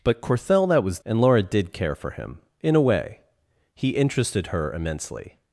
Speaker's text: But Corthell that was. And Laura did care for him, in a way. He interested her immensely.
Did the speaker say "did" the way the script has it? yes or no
yes